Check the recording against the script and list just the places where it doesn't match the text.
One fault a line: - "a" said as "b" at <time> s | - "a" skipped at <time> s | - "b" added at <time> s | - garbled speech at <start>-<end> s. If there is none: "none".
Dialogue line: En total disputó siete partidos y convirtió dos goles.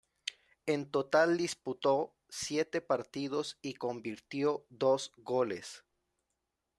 none